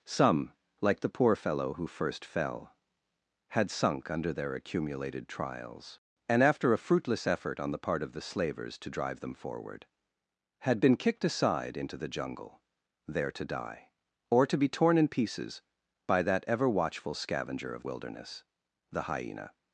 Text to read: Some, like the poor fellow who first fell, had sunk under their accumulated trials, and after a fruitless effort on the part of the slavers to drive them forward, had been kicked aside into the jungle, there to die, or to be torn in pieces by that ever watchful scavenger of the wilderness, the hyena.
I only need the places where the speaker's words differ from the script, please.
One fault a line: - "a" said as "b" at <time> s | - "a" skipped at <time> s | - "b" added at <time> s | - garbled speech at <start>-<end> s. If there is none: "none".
- "the" skipped at 17.8 s